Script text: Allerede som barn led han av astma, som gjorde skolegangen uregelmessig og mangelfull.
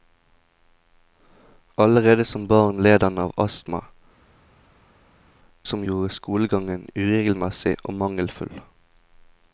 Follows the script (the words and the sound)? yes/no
yes